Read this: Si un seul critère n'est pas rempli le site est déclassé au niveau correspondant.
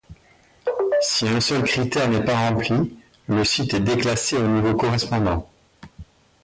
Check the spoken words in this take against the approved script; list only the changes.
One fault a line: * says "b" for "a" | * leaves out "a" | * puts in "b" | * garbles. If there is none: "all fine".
all fine